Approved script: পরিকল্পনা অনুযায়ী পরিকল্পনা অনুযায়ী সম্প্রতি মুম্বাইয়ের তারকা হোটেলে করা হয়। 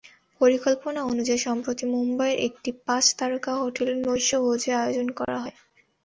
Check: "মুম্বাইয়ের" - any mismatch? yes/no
yes